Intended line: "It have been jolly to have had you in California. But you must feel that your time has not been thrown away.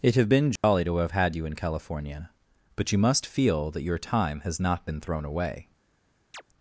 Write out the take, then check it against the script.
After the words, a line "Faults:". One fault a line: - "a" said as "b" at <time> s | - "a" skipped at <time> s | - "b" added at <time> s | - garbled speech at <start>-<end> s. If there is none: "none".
"It have been jolly to have had you in California. But you must feel that your time has not been thrown away.
Faults:
none